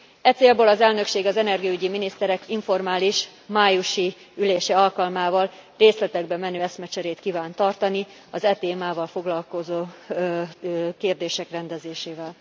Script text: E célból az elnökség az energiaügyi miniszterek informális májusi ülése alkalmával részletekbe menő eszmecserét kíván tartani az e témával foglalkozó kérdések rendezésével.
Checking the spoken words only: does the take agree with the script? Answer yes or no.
yes